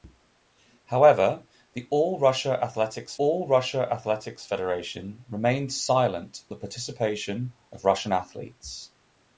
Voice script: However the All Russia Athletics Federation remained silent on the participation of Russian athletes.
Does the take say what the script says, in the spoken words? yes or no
no